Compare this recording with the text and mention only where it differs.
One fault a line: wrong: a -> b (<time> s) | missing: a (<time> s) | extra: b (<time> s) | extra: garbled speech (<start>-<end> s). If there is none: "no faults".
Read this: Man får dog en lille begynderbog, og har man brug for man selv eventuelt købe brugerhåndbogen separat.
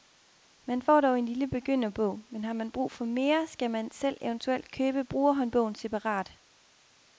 wrong: og -> men (2.3 s)
extra: mere skal (3.0 s)